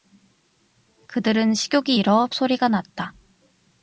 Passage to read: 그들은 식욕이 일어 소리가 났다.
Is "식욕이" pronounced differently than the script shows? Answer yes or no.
no